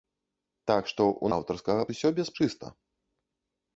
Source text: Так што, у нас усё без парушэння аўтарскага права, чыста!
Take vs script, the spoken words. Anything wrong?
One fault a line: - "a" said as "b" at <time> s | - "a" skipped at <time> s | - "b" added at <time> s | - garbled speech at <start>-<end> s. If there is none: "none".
- "нас" said as "аўтарскага" at 1.4 s
- "парушэння аўтарскага права" skipped at 2.3 s